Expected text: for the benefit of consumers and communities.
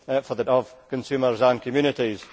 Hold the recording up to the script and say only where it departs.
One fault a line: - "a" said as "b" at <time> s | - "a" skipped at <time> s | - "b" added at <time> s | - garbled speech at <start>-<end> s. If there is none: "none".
- "benefit" skipped at 0.4 s